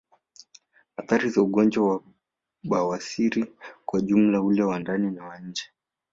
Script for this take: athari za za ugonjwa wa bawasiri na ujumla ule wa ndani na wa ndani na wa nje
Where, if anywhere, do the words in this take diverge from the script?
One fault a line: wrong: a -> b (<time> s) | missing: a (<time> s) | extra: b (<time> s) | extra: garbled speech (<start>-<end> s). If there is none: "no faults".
missing: za (1.4 s)
wrong: na -> kwa (3.9 s)
missing: ndani na wa (5.4 s)